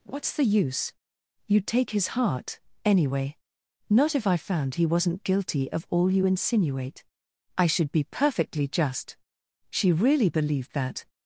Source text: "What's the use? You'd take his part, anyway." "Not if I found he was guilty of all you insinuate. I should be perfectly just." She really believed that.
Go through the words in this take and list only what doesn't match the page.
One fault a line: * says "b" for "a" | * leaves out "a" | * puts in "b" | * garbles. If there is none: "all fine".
* says "heart" for "part"
* says "wasn't" for "was"